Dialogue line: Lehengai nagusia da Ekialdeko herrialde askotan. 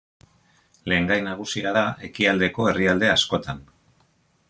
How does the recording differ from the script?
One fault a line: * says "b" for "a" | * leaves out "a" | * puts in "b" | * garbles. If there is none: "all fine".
all fine